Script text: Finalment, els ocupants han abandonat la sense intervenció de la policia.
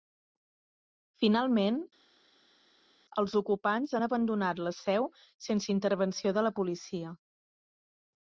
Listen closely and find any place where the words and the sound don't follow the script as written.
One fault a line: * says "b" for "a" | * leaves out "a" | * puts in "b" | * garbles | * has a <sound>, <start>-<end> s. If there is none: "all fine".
* puts in "seu"